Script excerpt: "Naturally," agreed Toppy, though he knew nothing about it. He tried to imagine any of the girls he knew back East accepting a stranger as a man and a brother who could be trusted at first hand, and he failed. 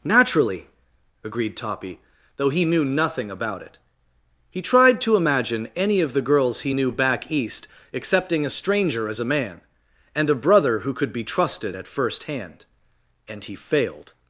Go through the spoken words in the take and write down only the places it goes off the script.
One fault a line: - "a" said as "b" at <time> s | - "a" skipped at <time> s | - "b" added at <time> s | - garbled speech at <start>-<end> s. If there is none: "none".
none